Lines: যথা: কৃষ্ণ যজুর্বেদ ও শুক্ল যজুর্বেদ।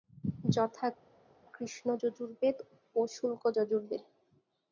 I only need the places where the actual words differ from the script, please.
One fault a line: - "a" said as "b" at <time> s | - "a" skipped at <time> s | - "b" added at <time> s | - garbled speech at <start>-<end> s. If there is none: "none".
none